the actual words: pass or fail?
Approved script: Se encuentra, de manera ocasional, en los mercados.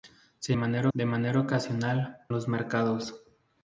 fail